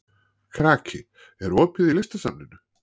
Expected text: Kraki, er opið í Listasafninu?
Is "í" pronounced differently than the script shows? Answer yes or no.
no